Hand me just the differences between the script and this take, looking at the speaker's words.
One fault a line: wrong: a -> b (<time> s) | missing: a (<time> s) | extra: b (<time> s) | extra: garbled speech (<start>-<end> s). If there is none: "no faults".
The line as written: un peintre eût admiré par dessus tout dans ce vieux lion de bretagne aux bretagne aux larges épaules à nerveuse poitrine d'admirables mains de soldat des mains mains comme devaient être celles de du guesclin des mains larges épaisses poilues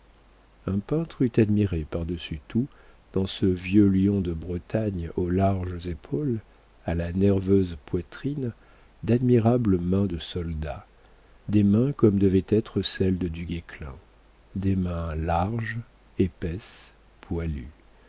missing: bretagne aux (5.3 s)
extra: la (7.0 s)
missing: mains (11.9 s)